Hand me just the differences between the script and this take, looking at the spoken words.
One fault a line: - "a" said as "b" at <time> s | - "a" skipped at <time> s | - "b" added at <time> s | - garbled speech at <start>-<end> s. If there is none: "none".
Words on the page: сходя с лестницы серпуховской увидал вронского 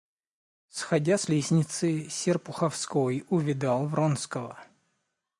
none